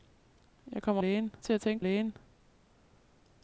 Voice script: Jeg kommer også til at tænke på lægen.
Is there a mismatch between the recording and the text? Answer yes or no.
yes